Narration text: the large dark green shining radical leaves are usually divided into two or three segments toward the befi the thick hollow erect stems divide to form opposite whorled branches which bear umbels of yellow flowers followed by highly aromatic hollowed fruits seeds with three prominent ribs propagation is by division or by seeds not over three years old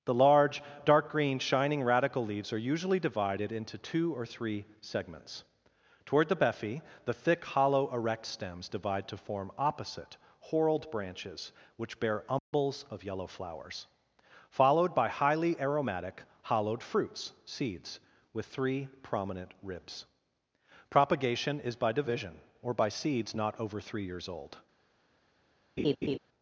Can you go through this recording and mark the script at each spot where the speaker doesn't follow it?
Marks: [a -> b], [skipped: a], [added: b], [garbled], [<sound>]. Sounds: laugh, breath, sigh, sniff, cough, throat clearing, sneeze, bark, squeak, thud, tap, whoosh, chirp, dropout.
the large dark green shining radical leaves are usually divided into two or three segments toward the befi the thick hollow erect stems divide to form opposite whorled branches which bear umbels [dropout] of yellow flowers followed by highly aromatic hollowed fruits seeds with three prominent ribs propagation is by division or by seeds not over three years old [laugh]